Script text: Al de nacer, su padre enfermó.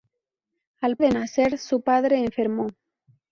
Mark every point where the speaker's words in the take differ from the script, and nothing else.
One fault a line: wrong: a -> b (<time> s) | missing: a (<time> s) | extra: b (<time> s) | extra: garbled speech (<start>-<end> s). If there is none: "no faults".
no faults